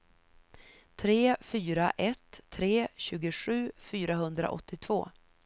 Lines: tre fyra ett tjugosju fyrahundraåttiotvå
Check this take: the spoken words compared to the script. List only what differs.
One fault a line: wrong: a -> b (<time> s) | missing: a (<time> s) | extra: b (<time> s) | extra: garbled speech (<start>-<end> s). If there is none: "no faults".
extra: tre (2.5 s)